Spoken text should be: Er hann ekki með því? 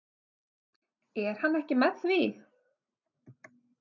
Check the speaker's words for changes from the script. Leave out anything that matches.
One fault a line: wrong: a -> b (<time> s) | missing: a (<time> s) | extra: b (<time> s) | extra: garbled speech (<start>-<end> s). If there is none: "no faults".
no faults